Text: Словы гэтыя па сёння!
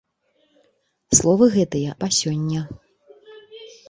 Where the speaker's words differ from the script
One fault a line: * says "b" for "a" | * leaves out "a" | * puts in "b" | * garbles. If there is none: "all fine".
all fine